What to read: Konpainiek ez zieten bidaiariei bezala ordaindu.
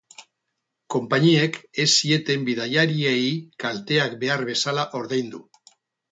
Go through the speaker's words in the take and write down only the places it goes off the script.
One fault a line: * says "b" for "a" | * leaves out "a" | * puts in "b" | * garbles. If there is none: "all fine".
* puts in "kalteak behar"